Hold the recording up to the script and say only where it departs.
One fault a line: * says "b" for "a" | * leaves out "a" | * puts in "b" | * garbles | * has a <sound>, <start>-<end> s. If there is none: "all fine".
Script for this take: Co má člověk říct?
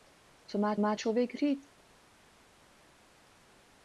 * puts in "má"